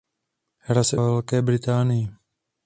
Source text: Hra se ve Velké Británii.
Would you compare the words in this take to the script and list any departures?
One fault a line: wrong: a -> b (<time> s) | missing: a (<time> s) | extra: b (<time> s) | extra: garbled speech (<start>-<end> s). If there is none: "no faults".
no faults